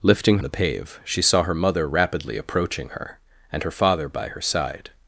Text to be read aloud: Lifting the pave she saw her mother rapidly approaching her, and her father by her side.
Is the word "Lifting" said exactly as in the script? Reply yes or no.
yes